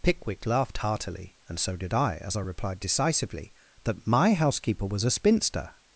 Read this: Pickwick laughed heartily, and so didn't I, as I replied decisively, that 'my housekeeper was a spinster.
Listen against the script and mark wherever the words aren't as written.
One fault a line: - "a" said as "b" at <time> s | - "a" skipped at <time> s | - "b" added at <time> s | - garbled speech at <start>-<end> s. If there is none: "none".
- "didn't" said as "did" at 1.8 s